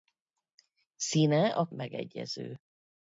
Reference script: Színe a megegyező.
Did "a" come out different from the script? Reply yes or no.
no